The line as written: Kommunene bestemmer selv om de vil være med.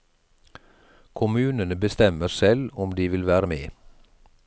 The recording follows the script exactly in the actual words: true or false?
true